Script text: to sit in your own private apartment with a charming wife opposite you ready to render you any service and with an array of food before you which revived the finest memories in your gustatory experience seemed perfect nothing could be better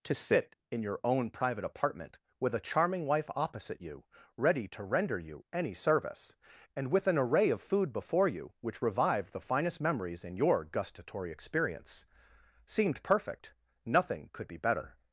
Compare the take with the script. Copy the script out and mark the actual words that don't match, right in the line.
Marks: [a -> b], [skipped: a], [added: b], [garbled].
to sit in your own private apartment with a charming wife opposite you ready to render you any service and with an array of food before you which revived the finest memories in your gustatory experience seemed perfect nothing could be better